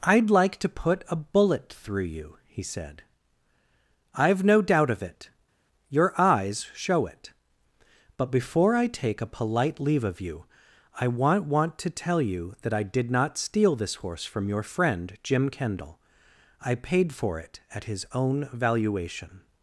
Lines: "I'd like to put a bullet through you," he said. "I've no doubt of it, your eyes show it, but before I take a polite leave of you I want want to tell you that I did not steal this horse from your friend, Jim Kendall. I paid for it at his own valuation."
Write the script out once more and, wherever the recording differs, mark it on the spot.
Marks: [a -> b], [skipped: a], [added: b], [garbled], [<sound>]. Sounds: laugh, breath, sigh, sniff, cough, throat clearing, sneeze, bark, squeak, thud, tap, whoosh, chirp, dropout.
"I'd like to put a bullet through you," he said. "I've no doubt of it, your eyes show it, but before I take a polite leave of you I want want to tell you that I did not steal this horse from your friend, Jim Kendall. I paid for it at his own valuation."